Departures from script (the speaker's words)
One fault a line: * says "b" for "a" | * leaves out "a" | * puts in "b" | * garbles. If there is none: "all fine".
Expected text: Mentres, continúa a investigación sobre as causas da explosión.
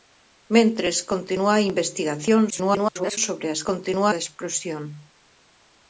* garbles
* says "continúa" for "causas"